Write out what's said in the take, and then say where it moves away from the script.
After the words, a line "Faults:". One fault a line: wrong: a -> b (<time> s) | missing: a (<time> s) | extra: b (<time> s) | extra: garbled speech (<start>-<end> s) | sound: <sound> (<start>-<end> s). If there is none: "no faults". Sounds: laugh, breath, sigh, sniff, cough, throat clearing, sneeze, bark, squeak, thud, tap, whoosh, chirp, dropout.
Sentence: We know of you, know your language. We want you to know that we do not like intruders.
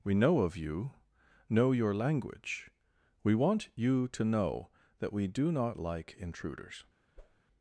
We know of you, know your language. We want you to know that we do not like intruders.
Faults:
sound: whoosh (7.2-7.4 s)